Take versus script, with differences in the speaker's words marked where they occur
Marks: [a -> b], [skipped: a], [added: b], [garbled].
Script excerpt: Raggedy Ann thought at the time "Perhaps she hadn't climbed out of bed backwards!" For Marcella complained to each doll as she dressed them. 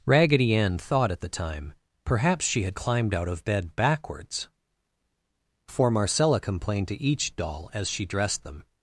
Raggedy Ann thought at the time "Perhaps she [hadn't -> had] climbed out of bed backwards!" For Marcella complained to each doll as she dressed them.